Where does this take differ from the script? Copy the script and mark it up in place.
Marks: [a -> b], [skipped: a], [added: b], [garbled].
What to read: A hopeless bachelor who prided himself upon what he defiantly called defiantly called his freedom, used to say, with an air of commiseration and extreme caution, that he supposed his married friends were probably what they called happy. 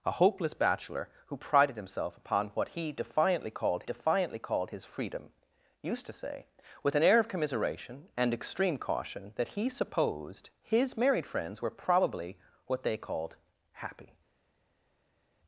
A hopeless bachelor who prided himself upon what he defiantly called defiantly called his freedom, used to say, with an air of commiseration and extreme caution, that he supposed his married friends were probably what they called happy.